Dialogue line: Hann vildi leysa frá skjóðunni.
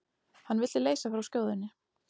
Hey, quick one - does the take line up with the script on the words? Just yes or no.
yes